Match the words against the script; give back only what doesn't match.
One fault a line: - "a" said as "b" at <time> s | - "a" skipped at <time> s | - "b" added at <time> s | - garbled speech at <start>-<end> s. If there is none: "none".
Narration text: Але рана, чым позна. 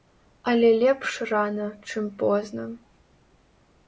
- "лепш" added at 0.8 s